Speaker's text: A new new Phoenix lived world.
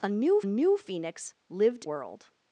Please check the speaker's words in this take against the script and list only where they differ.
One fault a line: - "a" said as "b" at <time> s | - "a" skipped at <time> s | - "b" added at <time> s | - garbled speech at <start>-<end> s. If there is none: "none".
none